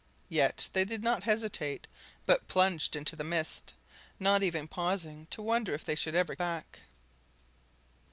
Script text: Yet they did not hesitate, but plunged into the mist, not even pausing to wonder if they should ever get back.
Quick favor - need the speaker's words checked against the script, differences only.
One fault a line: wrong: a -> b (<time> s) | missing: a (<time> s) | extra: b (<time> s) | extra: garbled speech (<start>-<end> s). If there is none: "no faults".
missing: get (6.4 s)